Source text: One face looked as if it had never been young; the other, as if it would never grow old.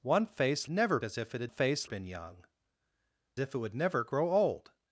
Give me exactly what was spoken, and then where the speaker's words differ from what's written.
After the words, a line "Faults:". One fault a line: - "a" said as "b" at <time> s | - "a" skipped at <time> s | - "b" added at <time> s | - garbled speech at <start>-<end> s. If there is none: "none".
One face never as if it had face been young; if it would never grow old.
Faults:
- "looked" said as "never" at 0.7 s
- "never" said as "face" at 1.5 s
- "the other as" skipped at 2.5 s